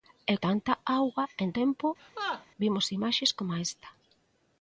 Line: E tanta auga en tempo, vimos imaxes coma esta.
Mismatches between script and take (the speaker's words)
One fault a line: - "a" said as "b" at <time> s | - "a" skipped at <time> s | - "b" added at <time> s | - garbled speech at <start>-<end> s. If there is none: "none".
none